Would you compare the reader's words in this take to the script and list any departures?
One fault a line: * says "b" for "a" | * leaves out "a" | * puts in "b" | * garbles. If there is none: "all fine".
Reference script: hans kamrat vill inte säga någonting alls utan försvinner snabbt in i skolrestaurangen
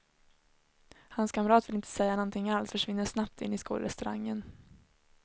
* leaves out "utan"